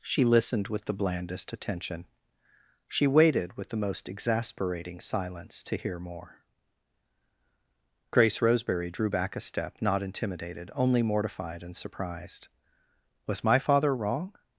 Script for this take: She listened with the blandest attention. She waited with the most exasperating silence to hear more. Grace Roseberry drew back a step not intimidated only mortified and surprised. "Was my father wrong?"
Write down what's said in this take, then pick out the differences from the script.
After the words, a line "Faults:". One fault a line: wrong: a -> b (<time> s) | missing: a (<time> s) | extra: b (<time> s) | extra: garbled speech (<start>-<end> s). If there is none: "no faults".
She listened with the blandest attention. She waited with the most exasperating silence to hear more. Grace Roseberry drew back a step not intimidated only mortified and surprised. "Was my father wrong?"
Faults:
no faults